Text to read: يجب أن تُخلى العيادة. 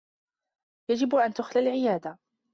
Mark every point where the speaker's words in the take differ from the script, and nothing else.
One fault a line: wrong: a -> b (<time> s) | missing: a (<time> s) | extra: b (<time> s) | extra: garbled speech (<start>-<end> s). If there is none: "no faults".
no faults